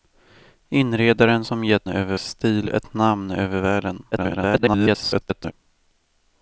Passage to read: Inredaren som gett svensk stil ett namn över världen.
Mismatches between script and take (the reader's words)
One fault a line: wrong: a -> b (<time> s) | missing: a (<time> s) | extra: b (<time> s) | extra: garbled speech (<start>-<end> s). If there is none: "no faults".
wrong: svensk -> över (1.9 s)
extra: garbled speech (4.1-5.5 s)